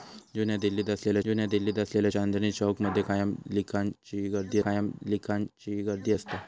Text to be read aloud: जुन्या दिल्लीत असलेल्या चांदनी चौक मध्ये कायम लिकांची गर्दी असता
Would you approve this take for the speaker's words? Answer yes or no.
no